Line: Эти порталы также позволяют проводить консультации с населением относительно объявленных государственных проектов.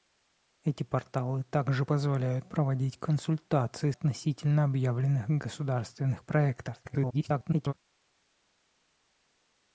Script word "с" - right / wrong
wrong